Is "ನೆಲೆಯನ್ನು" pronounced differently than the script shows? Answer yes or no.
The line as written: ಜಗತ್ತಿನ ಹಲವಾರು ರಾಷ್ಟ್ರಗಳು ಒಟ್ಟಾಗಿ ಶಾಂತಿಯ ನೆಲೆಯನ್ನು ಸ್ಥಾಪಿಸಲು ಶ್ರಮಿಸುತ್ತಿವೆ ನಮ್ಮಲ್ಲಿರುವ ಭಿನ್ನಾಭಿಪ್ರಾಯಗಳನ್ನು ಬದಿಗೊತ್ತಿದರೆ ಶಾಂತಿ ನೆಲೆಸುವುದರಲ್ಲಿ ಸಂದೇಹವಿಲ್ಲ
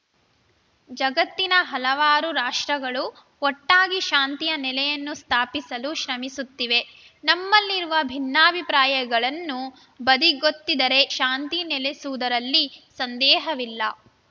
no